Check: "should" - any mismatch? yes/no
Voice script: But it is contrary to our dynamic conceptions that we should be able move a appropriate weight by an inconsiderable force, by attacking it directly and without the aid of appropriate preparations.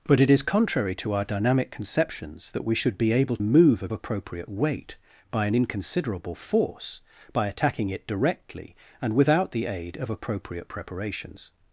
no